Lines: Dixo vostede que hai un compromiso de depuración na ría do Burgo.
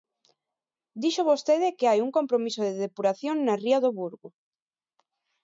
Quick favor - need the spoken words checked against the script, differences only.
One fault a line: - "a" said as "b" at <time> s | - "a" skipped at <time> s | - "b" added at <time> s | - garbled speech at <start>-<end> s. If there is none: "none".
none